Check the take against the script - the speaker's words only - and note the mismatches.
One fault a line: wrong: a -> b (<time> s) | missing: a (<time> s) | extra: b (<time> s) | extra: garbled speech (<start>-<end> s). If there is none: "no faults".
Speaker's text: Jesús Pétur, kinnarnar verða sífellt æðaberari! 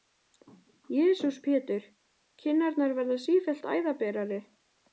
no faults